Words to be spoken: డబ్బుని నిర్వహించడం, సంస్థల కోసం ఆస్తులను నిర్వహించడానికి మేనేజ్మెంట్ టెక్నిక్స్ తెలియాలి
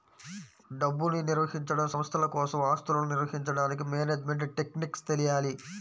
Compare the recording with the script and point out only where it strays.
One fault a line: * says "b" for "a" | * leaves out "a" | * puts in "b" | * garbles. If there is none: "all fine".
all fine